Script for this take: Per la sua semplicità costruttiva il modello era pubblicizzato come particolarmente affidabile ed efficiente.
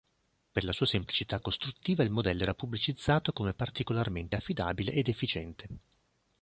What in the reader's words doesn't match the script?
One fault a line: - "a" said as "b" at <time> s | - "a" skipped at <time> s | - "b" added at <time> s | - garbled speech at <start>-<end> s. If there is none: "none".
none